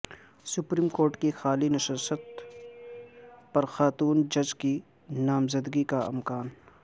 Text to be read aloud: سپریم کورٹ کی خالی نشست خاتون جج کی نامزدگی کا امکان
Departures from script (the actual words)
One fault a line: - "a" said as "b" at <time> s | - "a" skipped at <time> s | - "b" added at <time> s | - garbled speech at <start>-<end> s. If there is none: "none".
- "پر" added at 3.5 s